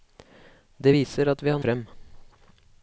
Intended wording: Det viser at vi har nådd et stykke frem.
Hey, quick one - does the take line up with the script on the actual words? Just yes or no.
no